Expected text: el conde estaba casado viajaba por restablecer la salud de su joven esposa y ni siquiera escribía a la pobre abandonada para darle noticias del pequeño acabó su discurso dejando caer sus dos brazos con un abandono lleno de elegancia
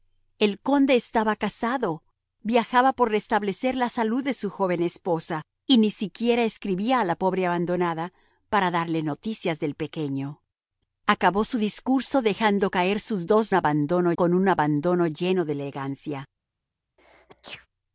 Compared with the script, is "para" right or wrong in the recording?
right